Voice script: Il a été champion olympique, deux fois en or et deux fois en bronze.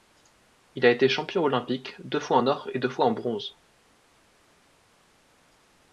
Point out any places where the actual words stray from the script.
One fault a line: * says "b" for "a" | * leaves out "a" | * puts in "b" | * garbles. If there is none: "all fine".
all fine